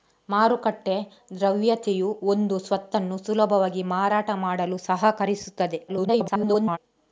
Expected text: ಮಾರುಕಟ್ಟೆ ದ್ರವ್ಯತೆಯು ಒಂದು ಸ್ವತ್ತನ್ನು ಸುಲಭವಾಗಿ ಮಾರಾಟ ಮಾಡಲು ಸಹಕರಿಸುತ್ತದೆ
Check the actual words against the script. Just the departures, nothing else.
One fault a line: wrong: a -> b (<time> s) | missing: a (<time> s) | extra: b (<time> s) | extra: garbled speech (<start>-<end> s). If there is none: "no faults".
extra: garbled speech (5.9-6.8 s)